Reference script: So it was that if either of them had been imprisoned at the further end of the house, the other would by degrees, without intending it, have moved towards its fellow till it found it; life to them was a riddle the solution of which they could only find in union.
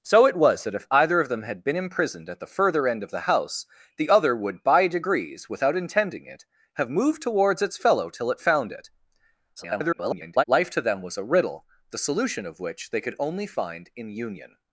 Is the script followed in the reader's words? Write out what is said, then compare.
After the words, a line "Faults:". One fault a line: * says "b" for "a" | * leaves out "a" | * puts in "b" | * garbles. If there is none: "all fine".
So it was that if either of them had been imprisoned at the further end of the house, the other would by degrees, without intending it, have moved towards its fellow till it found it; [garbled] life to them was a riddle the solution of which they could only find in union.
Faults:
* garbles